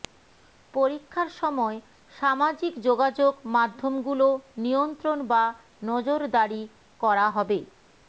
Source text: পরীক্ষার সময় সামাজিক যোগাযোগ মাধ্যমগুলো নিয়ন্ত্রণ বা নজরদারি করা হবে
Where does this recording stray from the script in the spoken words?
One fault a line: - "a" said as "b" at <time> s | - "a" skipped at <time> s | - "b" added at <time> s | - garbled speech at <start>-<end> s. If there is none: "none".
none